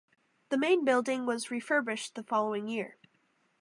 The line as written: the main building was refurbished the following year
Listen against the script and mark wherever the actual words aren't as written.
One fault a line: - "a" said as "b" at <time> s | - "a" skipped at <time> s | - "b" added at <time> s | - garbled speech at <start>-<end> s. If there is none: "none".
none